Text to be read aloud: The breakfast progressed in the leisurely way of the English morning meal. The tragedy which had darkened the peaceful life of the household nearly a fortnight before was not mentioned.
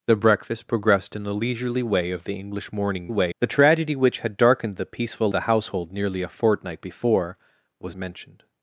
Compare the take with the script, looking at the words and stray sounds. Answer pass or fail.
fail